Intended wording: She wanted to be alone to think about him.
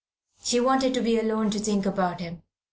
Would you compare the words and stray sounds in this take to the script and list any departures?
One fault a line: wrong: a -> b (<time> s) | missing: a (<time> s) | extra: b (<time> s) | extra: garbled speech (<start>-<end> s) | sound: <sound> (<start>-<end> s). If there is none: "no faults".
no faults